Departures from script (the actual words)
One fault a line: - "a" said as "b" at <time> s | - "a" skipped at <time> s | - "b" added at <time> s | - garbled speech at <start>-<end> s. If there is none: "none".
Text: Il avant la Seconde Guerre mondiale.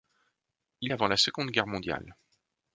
none